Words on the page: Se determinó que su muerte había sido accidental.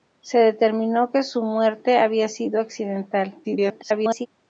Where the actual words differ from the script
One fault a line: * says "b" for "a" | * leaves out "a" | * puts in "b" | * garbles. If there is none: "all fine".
* garbles